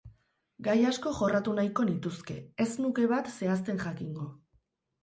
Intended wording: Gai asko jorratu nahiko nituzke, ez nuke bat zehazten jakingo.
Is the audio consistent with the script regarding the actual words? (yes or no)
yes